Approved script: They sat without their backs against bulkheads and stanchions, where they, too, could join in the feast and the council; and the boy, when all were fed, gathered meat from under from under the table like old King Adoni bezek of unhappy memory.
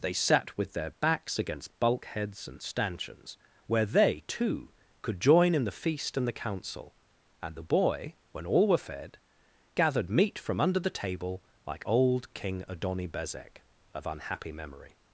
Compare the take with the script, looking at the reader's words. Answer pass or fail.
fail